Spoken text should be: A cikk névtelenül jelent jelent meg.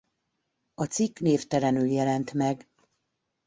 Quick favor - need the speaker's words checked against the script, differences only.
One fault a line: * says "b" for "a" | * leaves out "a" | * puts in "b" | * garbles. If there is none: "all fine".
* leaves out "jelent"